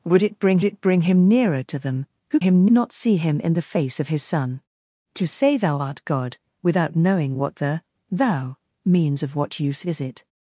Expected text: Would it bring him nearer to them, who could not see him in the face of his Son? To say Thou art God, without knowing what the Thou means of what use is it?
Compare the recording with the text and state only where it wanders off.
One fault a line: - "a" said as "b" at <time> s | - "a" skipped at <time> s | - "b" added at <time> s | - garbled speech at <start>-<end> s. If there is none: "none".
- "it bring" added at 0.6 s
- "could" said as "him" at 2.4 s